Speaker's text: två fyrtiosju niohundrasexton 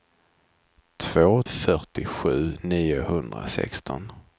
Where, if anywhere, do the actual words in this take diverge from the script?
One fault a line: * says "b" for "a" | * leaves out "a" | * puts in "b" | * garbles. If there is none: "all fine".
all fine